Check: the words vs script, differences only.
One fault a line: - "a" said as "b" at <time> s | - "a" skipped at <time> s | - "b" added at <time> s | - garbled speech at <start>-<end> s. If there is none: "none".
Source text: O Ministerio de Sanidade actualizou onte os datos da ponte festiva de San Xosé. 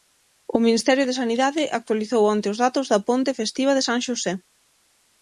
none